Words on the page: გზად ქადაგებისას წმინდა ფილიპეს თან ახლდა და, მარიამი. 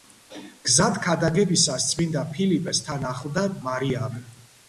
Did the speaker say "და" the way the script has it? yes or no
no